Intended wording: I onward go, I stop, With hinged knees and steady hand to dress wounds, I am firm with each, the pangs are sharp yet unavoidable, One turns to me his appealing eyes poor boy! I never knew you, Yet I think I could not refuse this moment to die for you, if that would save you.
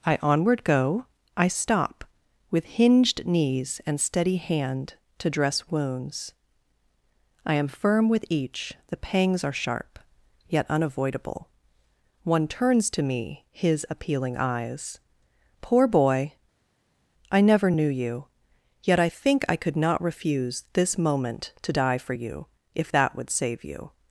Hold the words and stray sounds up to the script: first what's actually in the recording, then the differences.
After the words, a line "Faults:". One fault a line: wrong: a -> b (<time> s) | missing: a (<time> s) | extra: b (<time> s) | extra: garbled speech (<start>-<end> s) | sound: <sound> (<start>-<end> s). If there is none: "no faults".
I onward go, I stop, With hinged knees and steady hand to dress wounds, I am firm with each, the pangs are sharp yet unavoidable, One turns to me his appealing eyes poor boy! I never knew you, Yet I think I could not refuse this moment to die for you, if that would save you.
Faults:
no faults